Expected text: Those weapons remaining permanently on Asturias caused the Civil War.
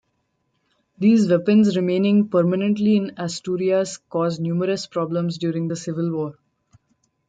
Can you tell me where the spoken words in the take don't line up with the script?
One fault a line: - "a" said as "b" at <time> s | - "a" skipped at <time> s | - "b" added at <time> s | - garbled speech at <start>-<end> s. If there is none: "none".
- "Those" said as "These" at 1.0 s
- "on" said as "in" at 3.0 s
- "numerous problems during" added at 4.4 s